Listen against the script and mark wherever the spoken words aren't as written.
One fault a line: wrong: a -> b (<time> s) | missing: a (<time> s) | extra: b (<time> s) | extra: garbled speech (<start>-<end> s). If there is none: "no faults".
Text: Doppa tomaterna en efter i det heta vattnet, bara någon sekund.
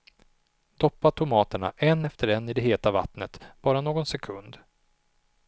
extra: en (2.3 s)